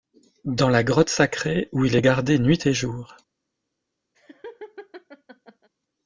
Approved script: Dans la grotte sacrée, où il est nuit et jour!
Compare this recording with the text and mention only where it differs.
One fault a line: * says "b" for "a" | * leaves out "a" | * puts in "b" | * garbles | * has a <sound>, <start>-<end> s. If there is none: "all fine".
* puts in "gardé"
* has a laugh, 4.1-5.7 s